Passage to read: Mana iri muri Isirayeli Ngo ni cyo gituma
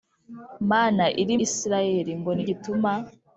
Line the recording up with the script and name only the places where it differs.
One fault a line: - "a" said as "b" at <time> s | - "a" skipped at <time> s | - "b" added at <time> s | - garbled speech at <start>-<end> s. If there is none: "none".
- "muri" skipped at 1.4 s
- "cyo" skipped at 2.4 s